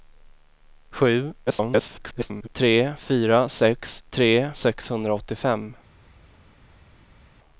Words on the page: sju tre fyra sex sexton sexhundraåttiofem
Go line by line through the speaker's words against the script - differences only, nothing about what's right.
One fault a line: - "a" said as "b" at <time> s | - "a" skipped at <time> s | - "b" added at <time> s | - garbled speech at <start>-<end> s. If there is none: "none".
- garbled speech at 1.5-2.5 s
- "sexton" said as "tre" at 4.1 s